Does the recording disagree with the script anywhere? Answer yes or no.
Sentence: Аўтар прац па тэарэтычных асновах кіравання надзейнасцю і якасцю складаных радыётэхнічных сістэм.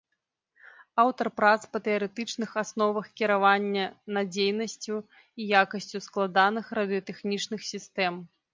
no